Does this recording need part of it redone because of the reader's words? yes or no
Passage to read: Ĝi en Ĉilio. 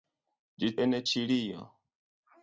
no